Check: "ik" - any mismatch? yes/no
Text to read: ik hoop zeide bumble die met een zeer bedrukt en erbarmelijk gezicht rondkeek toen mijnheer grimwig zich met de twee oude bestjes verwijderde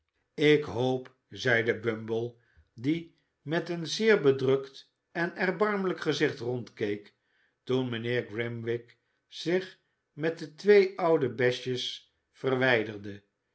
no